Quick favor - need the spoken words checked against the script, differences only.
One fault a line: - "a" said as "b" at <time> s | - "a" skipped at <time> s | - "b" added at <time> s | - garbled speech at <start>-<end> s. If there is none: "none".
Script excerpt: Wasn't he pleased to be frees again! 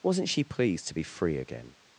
- "he" said as "she" at 0.3 s
- "frees" said as "free" at 1.0 s